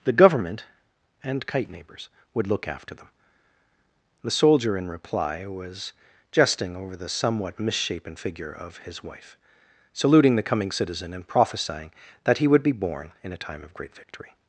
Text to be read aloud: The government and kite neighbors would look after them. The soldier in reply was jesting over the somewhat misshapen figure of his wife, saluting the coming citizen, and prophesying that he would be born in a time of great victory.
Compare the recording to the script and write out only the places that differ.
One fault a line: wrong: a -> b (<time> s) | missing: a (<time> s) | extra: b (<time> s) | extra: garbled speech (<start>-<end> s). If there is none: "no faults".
no faults